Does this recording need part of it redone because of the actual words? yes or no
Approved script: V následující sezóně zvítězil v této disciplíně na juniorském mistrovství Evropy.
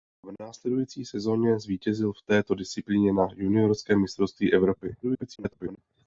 yes